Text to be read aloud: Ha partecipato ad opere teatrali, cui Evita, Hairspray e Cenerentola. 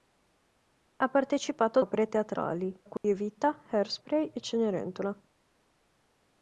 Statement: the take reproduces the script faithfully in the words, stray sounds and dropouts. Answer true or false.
false